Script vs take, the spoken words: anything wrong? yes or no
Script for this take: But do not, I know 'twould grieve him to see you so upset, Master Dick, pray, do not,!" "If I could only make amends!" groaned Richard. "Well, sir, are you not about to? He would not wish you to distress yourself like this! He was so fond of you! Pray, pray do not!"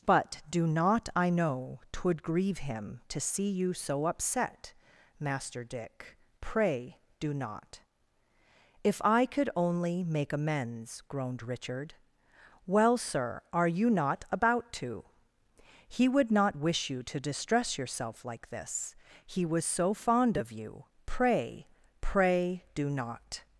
no